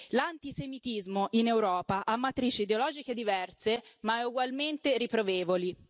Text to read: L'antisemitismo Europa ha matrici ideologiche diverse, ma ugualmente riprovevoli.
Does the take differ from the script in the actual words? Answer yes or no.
yes